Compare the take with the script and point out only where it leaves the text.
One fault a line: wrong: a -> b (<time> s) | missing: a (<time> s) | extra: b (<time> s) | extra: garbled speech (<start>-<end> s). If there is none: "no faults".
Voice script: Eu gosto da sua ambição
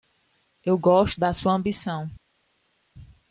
no faults